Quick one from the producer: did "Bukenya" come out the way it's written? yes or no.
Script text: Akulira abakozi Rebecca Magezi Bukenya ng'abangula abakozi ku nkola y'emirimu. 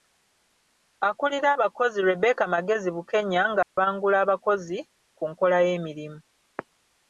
yes